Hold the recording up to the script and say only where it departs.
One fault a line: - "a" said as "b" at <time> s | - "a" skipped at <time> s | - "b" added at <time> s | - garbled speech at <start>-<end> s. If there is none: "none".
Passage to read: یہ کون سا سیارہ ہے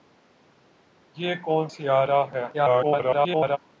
- "سا" skipped at 1.6 s
- garbled speech at 2.5-3.6 s